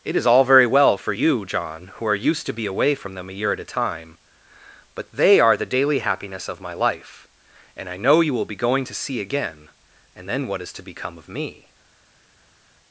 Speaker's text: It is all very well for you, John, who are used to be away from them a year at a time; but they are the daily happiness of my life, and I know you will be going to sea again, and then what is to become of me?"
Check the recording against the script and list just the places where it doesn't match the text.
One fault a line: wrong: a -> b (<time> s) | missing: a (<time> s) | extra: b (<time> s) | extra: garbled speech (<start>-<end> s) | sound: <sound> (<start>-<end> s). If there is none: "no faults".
no faults